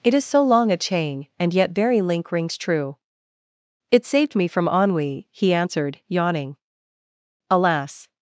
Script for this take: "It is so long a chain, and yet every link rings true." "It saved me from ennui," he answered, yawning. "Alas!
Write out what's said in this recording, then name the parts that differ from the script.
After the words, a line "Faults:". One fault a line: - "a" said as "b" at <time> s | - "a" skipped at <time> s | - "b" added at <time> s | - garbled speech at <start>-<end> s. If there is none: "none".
"It is so long a chain, and yet very link rings true." "It saved me from ennui," he answered, yawning. "Alas!
Faults:
- "every" said as "very" at 1.7 s